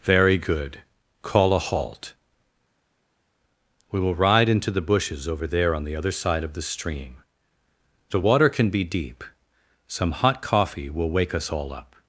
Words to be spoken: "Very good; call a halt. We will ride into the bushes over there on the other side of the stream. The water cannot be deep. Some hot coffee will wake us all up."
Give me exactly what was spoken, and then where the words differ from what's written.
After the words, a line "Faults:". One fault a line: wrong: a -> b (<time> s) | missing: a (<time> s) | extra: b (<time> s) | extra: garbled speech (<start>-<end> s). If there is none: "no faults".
"Very good; call a halt. We will ride into the bushes over there on the other side of the stream. The water can be deep. Some hot coffee will wake us all up."
Faults:
wrong: cannot -> can (8.5 s)